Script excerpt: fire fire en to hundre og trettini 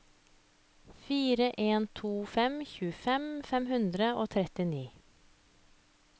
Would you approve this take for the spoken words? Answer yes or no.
no